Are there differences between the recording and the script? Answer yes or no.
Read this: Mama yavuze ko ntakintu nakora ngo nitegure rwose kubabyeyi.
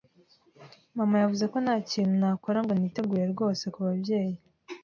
no